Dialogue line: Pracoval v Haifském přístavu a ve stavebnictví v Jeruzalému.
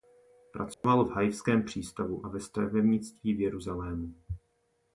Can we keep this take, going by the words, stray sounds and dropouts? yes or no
no